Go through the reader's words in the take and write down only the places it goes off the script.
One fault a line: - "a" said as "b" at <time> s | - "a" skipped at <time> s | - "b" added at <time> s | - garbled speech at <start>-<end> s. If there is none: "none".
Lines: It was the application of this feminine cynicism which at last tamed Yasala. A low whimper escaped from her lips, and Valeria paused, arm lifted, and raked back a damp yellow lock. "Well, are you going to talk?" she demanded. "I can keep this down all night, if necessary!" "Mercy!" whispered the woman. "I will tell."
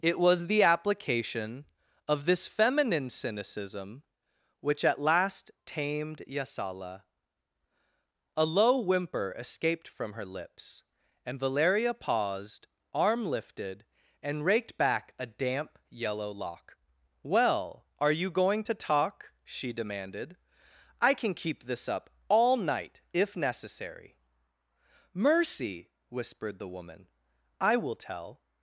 - "down" said as "up" at 21.9 s